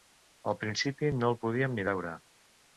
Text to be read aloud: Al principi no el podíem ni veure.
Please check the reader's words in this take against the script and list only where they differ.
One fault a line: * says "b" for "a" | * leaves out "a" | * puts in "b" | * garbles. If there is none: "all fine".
all fine